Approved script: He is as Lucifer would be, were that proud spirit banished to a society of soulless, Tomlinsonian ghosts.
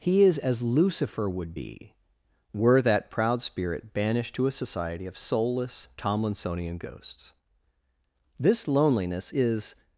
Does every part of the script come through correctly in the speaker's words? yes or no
no